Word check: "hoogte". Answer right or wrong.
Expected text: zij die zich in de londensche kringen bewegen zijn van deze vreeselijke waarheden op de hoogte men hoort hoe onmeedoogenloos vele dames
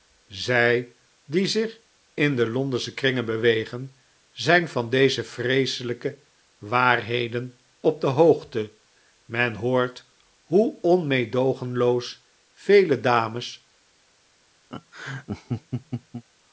right